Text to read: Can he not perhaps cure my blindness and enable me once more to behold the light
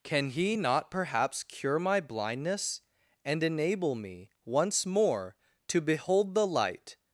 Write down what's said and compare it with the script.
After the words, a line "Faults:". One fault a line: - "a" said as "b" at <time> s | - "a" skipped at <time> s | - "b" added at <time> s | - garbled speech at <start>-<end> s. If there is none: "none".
Can he not perhaps cure my blindness and enable me once more to behold the light
Faults:
none